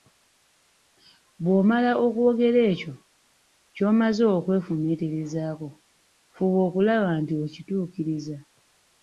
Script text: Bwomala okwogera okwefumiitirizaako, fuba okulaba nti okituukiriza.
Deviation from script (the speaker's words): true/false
true